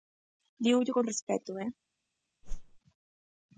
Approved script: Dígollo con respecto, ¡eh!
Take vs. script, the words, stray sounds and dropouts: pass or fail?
fail